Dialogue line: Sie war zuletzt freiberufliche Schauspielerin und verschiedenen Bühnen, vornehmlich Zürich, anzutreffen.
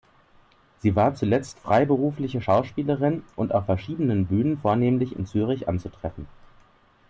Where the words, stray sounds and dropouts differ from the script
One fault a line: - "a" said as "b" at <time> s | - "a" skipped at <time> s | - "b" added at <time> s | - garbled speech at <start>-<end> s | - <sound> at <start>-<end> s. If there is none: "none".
- "auf" added at 3.5 s
- "in" added at 5.1 s